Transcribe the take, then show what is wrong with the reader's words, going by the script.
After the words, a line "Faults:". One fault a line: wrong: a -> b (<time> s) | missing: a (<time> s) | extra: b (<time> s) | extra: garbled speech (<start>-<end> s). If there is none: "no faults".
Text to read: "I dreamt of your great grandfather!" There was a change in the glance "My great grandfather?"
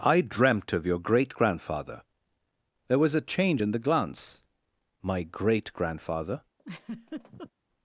"I dreamt of your great grandfather!" There was a change in the glance "My great grandfather?"
Faults:
no faults